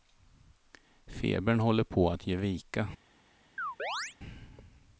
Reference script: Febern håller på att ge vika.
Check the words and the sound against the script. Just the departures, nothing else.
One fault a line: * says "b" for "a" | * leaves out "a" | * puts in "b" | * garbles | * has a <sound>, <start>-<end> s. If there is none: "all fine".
* has a chirp, 3.6-4.2 s